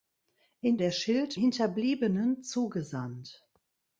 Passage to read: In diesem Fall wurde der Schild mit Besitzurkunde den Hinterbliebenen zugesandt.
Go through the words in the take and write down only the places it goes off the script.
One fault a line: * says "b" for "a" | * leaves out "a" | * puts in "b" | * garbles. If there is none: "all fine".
* leaves out "diesem Fall wurde"
* leaves out "mit Besitzurkunde den"